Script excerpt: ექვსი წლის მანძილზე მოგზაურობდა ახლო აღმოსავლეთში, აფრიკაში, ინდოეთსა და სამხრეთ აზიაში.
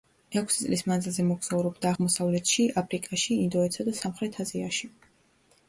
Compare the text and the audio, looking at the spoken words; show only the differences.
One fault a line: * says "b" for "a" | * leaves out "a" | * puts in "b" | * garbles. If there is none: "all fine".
* leaves out "ახლო"